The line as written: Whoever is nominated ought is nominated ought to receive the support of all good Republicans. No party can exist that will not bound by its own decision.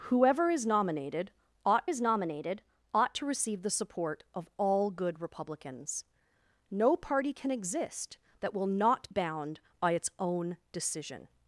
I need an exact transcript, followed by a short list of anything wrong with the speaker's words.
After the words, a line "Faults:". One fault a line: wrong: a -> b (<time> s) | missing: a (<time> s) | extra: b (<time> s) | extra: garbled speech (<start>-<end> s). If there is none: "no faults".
Whoever is nominated ought is nominated ought to receive the support of all good Republicans. No party can exist that will not bound by its own decision.
Faults:
no faults